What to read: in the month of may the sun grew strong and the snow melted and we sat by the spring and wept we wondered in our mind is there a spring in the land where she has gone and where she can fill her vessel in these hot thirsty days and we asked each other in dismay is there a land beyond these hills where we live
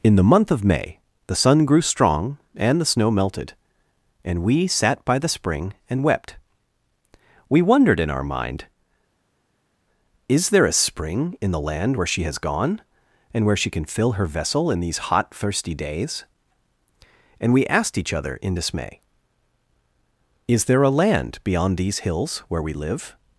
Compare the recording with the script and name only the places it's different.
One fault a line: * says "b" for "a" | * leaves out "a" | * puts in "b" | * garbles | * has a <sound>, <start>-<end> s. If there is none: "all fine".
all fine